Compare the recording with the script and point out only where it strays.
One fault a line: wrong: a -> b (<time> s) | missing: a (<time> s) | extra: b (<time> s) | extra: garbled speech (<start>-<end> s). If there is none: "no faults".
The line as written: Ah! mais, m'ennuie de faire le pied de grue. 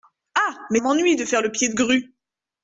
no faults